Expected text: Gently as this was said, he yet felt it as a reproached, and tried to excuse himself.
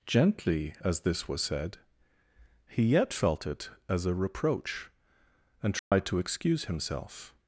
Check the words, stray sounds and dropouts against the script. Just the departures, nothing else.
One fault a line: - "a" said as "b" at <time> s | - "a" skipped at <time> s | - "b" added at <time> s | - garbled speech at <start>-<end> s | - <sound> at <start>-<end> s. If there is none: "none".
- "reproached" said as "reproach" at 4.2 s
- dropout at 5.8-5.9 s